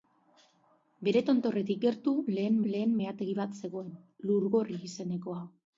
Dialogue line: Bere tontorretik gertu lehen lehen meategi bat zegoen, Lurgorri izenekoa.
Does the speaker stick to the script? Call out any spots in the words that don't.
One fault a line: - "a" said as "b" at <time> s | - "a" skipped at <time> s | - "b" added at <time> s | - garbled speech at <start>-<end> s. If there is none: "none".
none